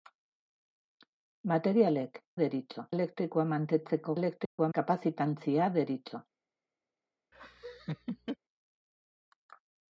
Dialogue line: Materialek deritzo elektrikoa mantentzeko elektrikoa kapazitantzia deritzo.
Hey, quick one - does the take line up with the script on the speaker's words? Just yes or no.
yes